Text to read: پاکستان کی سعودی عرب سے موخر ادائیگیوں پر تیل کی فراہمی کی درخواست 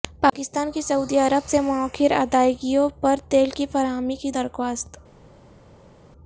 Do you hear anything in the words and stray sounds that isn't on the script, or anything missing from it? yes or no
no